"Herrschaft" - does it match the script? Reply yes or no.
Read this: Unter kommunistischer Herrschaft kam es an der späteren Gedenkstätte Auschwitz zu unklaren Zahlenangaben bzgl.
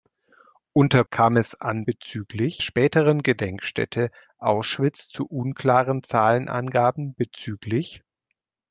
no